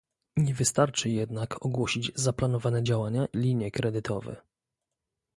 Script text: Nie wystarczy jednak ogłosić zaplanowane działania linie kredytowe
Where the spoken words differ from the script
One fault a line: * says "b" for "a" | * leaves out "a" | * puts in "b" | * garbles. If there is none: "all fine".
all fine